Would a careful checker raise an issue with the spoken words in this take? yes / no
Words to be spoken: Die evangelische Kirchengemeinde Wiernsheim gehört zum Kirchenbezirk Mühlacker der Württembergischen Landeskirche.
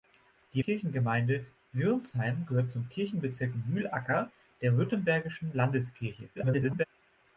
yes